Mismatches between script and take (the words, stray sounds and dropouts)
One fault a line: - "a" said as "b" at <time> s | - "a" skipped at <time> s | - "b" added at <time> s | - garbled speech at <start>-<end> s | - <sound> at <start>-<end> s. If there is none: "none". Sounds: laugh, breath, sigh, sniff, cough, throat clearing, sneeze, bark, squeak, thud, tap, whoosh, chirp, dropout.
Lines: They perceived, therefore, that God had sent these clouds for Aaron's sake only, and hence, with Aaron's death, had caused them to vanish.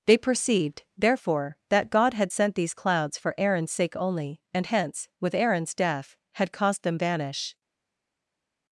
- "to" skipped at 7.0 s